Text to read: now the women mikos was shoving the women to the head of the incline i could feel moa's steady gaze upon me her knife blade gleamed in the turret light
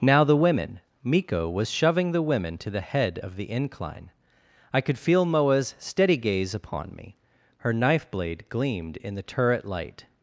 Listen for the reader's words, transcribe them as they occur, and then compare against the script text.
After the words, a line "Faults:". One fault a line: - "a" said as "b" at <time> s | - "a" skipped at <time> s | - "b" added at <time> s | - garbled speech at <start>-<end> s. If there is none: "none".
now the women miko was shoving the women to the head of the incline i could feel moa's steady gaze upon me her knife blade gleamed in the turret light
Faults:
- "mikos" said as "miko" at 1.0 s